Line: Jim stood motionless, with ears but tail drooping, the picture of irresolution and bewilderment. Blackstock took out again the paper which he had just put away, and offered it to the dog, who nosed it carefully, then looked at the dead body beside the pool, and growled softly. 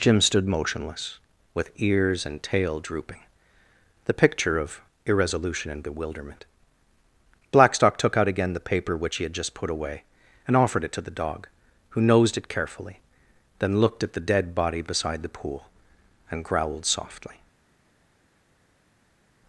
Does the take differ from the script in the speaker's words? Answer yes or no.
yes